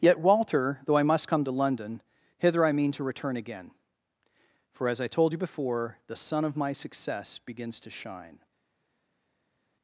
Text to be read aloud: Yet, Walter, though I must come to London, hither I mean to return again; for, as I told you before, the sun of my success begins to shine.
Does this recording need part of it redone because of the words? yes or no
no